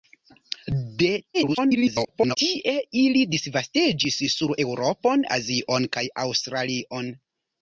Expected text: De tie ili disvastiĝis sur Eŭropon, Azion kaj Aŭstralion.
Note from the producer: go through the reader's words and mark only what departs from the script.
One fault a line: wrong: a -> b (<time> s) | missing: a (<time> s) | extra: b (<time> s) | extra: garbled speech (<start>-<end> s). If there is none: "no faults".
extra: garbled speech (1.3-2.4 s)